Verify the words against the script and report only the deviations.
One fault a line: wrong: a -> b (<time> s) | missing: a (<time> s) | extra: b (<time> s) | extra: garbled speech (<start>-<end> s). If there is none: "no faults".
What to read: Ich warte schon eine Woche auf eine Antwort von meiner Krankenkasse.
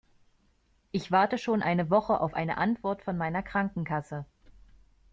no faults